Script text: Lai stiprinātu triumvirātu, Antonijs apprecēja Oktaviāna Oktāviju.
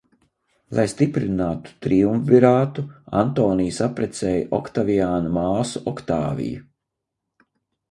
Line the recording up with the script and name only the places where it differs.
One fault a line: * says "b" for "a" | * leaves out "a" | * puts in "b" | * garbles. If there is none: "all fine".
* puts in "māsu"